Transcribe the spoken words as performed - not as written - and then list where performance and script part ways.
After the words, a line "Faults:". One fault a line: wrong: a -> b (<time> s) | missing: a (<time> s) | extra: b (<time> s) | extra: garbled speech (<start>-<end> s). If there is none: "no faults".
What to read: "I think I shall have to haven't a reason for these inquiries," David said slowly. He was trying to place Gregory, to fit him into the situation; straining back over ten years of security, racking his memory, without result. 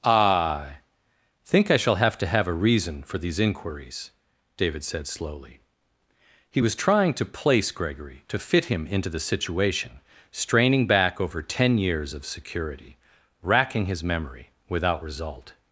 "I think I shall have to have a reason for these inquiries," David said slowly. He was trying to place Gregory, to fit him into the situation; straining back over ten years of security, racking his memory, without result.
Faults:
wrong: haven't -> have (2.3 s)